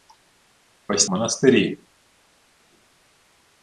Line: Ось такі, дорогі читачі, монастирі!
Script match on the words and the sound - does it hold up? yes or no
no